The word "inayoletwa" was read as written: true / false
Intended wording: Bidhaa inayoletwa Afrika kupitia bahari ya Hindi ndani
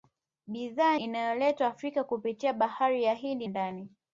true